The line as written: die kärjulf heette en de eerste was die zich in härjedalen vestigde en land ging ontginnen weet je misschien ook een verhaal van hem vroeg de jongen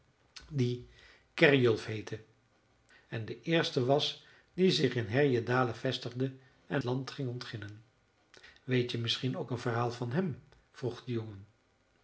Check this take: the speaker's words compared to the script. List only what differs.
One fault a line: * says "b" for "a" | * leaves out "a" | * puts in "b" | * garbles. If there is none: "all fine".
all fine